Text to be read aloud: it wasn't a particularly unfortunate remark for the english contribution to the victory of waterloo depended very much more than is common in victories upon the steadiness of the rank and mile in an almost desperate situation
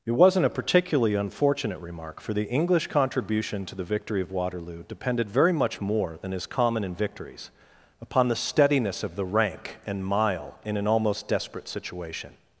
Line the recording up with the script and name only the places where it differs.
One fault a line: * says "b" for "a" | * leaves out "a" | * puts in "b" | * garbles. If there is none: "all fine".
all fine